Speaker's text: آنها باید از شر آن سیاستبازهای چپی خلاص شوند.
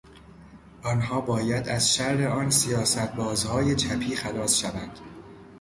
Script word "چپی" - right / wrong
right